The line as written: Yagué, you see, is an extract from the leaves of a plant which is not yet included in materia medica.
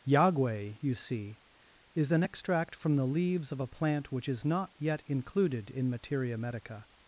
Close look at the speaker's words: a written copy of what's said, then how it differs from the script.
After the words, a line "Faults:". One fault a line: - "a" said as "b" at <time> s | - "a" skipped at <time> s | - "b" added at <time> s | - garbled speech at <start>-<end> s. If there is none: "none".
Yagué, you see, is an extract from the leaves of a plant which is not yet included in materia medica.
Faults:
none